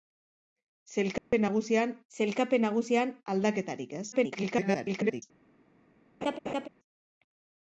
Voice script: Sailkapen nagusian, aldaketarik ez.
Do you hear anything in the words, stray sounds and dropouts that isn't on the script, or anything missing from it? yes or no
yes